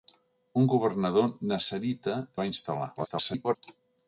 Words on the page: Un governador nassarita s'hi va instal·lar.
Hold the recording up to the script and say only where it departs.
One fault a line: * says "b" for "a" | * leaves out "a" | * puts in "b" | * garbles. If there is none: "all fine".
* leaves out "s'hi"
* garbles